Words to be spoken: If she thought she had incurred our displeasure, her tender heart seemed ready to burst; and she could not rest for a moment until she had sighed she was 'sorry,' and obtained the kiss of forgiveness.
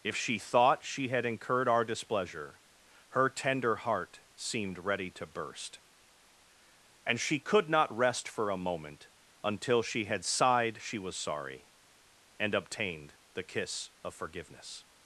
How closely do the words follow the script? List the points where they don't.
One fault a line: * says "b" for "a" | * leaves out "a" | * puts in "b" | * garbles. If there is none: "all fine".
all fine